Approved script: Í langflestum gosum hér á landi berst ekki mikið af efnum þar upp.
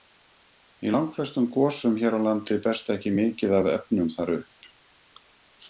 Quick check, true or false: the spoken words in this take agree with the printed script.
true